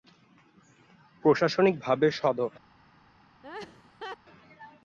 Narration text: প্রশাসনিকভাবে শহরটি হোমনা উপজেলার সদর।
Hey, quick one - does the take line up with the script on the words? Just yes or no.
no